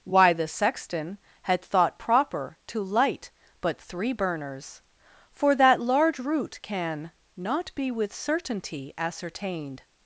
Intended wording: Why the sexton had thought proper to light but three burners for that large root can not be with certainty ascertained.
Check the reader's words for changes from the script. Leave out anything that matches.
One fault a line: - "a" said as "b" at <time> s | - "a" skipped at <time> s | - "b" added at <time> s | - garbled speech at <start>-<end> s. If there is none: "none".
none